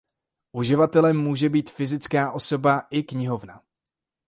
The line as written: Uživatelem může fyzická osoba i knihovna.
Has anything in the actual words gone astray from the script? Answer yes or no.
yes